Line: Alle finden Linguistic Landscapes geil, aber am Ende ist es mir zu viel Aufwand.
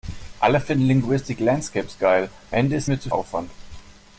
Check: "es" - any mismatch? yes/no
yes